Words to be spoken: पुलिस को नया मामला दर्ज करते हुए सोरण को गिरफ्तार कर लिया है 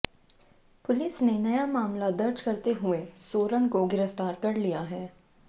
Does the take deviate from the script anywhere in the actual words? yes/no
yes